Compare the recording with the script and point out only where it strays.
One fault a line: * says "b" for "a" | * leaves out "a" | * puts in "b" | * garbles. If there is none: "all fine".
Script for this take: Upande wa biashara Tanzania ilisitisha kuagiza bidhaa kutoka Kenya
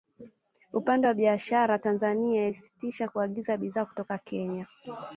all fine